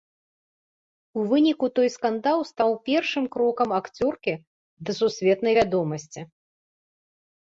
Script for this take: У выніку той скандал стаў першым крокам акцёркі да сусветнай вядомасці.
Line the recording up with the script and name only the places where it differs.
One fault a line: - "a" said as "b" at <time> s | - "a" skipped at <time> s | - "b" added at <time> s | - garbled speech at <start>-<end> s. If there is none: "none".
none